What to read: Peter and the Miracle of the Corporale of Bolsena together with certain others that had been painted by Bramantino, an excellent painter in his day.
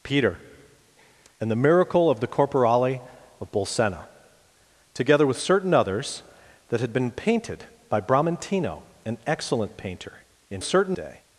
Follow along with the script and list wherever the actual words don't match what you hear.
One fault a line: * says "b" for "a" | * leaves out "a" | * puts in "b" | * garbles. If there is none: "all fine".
* says "certain" for "his"